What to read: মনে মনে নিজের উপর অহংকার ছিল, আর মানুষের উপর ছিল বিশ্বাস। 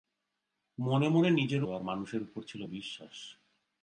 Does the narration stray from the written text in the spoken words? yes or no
yes